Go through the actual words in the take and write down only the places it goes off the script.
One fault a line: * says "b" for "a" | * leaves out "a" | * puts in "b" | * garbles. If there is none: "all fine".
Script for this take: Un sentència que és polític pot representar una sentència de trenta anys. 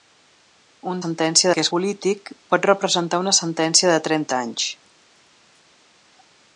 all fine